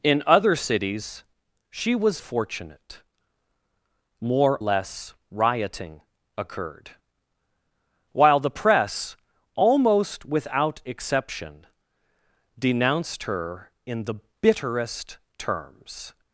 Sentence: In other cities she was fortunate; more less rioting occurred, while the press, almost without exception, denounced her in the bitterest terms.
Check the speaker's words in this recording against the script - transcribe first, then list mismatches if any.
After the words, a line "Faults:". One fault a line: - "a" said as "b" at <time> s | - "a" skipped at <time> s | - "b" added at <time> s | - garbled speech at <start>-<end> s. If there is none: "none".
In other cities she was fortunate; more less rioting occurred, while the press, almost without exception, denounced her in the bitterest terms.
Faults:
none